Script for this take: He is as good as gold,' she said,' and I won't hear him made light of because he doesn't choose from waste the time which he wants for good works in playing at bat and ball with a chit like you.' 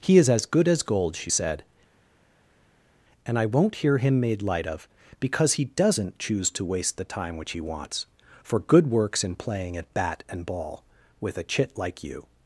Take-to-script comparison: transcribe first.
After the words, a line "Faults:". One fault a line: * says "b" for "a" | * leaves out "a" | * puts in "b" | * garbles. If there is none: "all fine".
He is as good as gold,' she said,' and I won't hear him made light of because he doesn't choose to waste the time which he wants for good works in playing at bat and ball with a chit like you.'
Faults:
* says "to" for "from"